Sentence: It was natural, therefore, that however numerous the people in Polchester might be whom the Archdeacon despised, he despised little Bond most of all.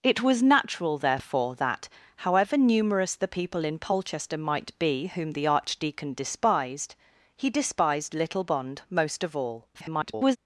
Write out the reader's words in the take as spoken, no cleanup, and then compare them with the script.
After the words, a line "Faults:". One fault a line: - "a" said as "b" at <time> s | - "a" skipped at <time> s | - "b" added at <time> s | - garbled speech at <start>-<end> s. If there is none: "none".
It was natural, therefore, that however numerous the people in Polchester might be whom the Archdeacon despised, he despised little Bond most of all. [garbled]
Faults:
- garbled speech at 9.7-10.4 s